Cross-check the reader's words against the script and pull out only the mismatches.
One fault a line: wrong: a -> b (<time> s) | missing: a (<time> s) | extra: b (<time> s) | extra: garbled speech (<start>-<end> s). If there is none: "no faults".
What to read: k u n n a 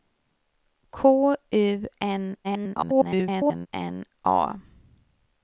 extra: garbled speech (2.4-3.7 s)